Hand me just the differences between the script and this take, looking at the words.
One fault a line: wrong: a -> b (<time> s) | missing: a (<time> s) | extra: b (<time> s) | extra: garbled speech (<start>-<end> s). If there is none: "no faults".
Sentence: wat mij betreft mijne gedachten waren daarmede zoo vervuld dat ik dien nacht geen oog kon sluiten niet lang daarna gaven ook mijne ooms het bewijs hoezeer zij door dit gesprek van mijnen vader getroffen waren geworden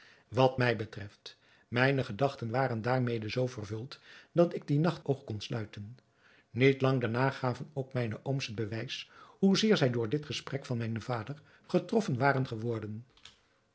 missing: geen (5.0 s)